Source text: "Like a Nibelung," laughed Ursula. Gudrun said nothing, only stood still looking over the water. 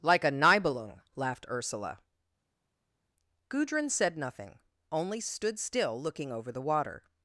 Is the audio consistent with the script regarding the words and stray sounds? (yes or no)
yes